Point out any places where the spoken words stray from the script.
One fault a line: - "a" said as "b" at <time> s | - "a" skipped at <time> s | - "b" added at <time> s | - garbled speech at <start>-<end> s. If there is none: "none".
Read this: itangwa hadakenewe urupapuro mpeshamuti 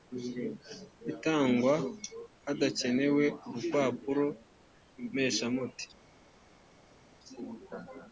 none